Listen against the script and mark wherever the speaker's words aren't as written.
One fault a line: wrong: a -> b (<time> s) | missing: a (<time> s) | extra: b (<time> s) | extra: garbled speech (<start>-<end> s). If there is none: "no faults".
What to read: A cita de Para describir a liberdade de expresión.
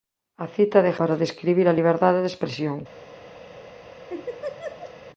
no faults